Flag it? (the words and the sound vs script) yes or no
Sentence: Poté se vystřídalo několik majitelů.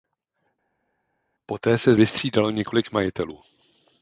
no